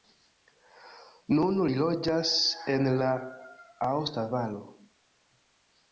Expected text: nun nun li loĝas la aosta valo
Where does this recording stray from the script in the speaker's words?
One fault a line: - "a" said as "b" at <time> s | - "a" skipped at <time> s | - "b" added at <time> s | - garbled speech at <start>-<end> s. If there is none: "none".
- "nun" skipped at 1.6 s
- "en" added at 2.8 s